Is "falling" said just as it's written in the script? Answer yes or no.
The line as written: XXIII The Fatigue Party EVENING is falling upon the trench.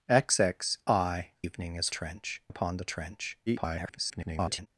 no